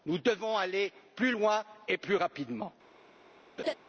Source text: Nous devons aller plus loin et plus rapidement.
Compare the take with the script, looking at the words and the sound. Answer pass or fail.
fail